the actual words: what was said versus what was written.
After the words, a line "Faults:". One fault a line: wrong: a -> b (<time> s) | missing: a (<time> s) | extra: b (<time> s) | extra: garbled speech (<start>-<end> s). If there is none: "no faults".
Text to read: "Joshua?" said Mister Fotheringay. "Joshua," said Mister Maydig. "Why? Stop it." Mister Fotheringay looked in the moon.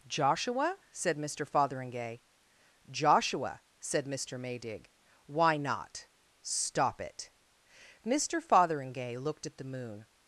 "Joshua?" said Mister Fotheringay. "Joshua," said Mister Maydig. "Why not? Stop it." Mister Fotheringay looked at the moon.
Faults:
extra: not (5.6 s)
wrong: in -> at (9.4 s)